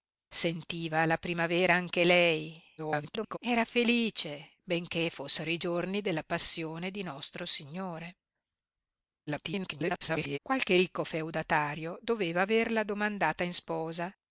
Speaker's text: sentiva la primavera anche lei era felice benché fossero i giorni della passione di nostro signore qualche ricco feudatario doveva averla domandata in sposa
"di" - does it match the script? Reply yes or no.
yes